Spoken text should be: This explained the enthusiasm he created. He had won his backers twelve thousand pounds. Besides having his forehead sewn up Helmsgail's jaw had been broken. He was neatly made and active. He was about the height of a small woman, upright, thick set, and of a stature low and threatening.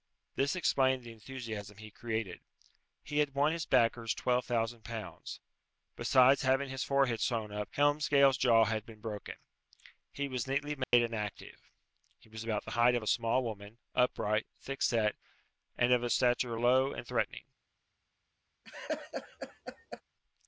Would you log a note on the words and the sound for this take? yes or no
yes